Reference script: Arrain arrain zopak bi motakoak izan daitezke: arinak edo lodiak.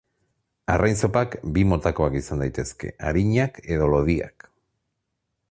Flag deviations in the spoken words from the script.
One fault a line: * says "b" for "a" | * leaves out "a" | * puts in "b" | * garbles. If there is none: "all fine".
* leaves out "arrain"